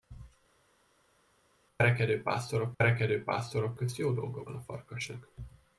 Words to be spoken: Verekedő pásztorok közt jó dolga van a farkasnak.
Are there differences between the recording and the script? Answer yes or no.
yes